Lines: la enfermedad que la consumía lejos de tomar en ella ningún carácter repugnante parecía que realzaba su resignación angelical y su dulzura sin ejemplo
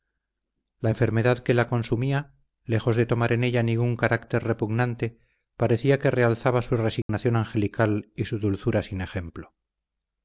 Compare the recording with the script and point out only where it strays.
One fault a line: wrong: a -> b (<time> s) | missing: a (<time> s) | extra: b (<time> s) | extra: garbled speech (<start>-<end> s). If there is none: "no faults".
no faults